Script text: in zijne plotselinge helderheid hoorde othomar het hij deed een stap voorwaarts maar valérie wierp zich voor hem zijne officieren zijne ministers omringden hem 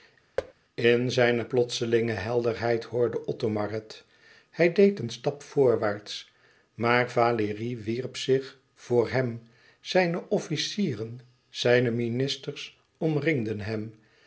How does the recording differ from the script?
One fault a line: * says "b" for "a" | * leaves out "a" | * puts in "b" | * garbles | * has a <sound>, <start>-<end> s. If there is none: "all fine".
* has a thud, 0.4-0.5 s